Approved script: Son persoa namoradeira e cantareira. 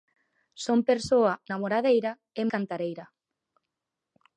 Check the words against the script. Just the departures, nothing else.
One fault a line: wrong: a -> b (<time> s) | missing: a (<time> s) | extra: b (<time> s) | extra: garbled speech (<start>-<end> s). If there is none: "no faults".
no faults